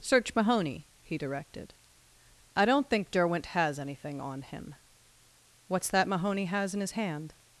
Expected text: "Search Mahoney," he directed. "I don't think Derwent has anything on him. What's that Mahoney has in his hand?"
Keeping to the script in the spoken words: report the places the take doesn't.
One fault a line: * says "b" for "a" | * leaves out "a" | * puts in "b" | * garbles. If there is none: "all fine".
all fine